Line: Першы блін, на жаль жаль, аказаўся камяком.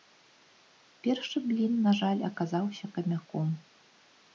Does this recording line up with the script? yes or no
no